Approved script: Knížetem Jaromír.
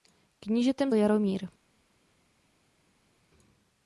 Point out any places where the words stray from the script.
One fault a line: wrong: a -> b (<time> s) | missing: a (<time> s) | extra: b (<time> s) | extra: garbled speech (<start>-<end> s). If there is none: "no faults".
no faults